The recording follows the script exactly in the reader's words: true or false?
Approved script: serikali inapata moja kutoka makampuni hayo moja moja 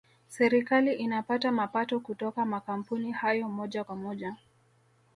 false